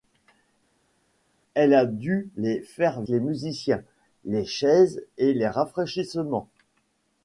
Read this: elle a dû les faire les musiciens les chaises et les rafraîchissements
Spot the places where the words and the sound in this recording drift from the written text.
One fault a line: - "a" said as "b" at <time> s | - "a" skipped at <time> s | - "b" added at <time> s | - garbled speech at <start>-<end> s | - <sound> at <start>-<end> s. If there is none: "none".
none